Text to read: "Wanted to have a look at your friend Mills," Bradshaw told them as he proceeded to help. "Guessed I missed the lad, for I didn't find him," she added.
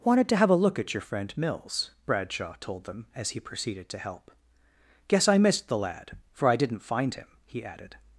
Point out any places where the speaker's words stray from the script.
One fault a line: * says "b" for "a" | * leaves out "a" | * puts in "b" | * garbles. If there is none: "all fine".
* says "Guess" for "Guessed"
* says "he" for "she"